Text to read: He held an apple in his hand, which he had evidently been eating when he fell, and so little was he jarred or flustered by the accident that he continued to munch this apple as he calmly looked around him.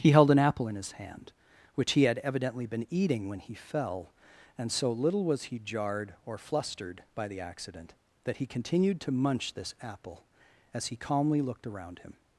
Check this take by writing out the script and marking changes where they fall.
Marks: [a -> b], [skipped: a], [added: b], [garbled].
He held an apple in his hand, which he had evidently been eating when he fell, and so little was he jarred or flustered by the accident that he continued to munch this apple as he calmly looked around him.